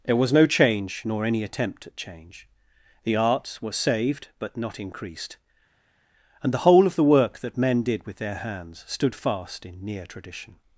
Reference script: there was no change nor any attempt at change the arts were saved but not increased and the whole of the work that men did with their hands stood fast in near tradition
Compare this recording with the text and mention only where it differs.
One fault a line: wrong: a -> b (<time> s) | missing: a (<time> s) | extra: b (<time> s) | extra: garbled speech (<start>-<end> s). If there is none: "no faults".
no faults